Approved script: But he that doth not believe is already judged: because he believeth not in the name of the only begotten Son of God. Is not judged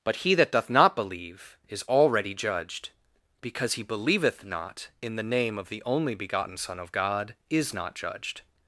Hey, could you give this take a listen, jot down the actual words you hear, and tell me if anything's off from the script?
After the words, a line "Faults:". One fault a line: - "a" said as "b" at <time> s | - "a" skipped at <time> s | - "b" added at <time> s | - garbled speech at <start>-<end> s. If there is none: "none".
But he that doth not believe is already judged: because he believeth not in the name of the only begotten Son of God. Is not judged
Faults:
none